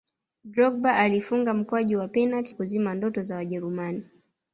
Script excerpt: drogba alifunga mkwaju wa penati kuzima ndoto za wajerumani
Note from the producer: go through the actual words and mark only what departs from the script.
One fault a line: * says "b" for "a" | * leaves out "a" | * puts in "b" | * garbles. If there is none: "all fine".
all fine